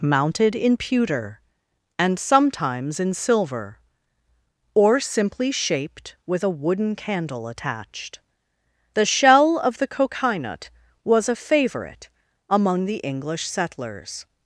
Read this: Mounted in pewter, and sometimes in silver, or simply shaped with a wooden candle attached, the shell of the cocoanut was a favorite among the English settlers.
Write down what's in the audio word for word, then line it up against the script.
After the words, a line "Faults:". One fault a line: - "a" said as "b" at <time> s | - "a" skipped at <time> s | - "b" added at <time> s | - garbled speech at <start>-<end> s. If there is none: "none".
Mounted in pewter, and sometimes in silver, or simply shaped with a wooden candle attached, the shell of the cocoanut was a favorite among the English settlers.
Faults:
none